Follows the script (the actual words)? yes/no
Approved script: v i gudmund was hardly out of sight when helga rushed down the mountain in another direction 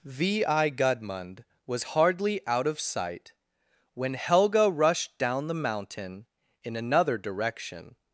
yes